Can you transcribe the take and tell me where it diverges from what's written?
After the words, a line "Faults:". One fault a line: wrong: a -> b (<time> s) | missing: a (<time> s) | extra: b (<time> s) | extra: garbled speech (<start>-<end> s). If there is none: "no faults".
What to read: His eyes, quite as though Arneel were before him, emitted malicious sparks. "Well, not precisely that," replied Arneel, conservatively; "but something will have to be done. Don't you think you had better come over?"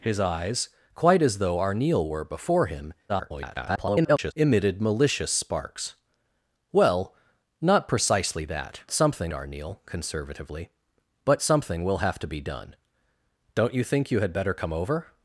His eyes, quite as though Arneel were before him, [garbled] emitted malicious sparks. "Well, not precisely that," something Arneel, conservatively; "but something will have to be done. Don't you think you had better come over?"
Faults:
extra: garbled speech (3.1-4.3 s)
wrong: replied -> something (8.9 s)